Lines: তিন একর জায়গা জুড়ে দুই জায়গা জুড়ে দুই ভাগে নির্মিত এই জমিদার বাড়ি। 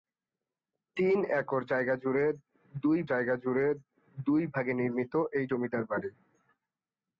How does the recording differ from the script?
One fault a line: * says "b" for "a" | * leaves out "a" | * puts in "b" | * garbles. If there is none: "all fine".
all fine